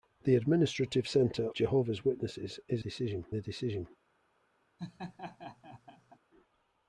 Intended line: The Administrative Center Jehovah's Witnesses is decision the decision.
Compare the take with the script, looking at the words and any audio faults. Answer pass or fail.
fail